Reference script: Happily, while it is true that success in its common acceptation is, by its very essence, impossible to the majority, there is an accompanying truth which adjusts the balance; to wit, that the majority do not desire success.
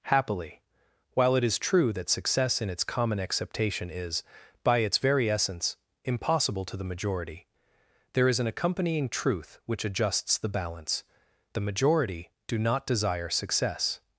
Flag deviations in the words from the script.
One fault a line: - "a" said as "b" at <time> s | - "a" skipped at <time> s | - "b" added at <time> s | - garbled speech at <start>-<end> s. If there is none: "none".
- "to wit that" skipped at 11.0 s